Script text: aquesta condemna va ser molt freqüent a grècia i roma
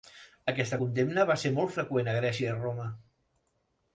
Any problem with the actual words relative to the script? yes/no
no